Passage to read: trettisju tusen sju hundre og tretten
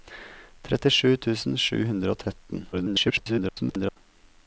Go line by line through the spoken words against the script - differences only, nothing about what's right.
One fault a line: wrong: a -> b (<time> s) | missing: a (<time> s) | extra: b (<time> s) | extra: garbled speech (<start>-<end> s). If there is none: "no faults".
extra: garbled speech (2.7-4.0 s)